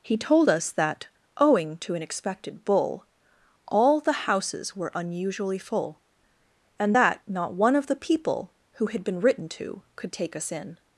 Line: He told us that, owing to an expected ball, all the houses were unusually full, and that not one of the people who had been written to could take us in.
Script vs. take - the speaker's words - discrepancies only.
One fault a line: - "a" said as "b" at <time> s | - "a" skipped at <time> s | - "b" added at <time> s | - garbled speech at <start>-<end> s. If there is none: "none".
- "ball" said as "bull" at 2.6 s